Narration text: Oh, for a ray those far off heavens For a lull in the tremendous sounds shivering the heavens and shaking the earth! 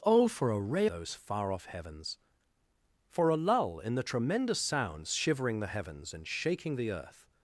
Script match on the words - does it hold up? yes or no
yes